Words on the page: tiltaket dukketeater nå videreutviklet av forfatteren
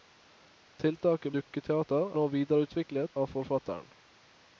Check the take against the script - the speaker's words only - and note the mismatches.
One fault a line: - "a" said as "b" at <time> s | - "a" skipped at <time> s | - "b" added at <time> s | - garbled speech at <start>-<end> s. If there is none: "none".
none